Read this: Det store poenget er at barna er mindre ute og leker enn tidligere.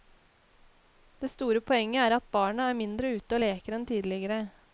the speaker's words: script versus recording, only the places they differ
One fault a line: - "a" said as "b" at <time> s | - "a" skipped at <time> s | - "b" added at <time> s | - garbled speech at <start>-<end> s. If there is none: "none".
none